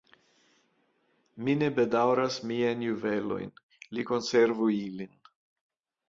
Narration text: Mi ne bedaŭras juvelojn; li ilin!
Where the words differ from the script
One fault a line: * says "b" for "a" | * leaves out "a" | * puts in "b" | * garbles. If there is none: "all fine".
* puts in "miajn"
* puts in "konservu"